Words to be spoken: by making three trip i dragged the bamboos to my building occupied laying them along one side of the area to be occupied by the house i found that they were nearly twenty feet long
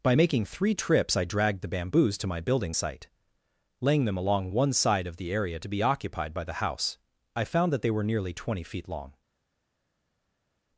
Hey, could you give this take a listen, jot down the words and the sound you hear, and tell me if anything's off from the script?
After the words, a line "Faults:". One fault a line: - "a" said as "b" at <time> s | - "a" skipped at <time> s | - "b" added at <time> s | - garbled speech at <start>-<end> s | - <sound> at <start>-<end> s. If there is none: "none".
by making three trips i dragged the bamboos to my building site laying them along one side of the area to be occupied by the house i found that they were nearly twenty feet long
Faults:
- "trip" said as "trips" at 0.7 s
- "occupied" said as "site" at 2.7 s